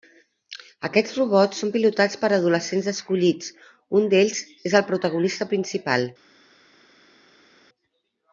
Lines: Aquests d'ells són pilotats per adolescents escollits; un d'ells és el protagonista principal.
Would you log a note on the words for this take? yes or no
yes